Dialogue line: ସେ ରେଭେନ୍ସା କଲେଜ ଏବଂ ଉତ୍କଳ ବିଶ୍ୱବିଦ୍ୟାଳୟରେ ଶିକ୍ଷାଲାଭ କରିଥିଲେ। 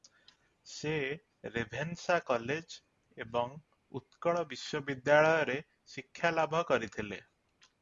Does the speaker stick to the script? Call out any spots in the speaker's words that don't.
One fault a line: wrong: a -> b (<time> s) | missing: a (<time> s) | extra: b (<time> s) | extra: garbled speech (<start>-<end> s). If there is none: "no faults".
no faults